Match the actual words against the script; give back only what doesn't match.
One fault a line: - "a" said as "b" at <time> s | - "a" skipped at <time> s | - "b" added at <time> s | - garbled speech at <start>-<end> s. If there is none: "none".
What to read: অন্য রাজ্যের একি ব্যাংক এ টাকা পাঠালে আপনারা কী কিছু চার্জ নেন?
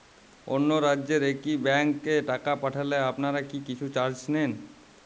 none